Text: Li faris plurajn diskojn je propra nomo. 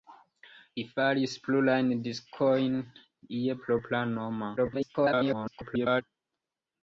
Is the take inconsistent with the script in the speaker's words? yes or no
yes